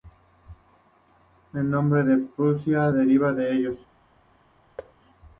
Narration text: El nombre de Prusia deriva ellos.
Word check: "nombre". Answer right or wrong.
right